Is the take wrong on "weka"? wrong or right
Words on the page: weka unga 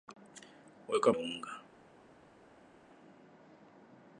right